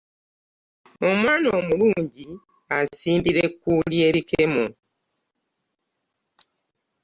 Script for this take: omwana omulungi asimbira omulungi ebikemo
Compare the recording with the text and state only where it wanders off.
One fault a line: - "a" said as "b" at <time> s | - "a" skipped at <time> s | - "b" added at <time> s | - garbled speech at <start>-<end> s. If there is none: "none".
- "omulungi" said as "ekkuuli" at 3.5 s